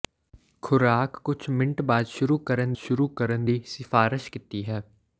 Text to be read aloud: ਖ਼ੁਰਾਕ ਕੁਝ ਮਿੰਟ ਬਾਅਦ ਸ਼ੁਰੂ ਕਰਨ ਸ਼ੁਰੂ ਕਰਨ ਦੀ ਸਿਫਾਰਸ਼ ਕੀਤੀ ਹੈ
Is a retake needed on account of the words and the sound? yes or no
no